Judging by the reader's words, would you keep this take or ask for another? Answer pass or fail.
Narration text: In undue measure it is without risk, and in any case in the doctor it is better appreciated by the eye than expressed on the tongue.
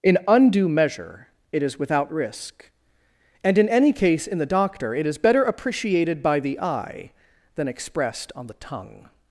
pass